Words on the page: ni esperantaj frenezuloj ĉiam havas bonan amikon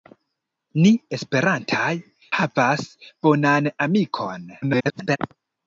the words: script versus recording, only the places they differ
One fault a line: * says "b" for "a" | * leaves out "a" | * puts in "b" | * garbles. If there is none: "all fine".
* leaves out "frenezuloj ĉiam"
* garbles